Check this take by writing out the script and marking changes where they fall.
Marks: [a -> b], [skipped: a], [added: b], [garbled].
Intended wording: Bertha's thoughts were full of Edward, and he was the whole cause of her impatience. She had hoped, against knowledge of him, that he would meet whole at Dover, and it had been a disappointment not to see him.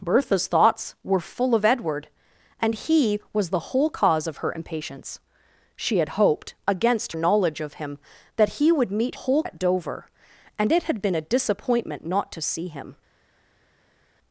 Bertha's thoughts were full of Edward, and he was the whole cause of her impatience. She had hoped, against knowledge of him, that he would meet whole at Dover, and it had been a disappointment not to see him.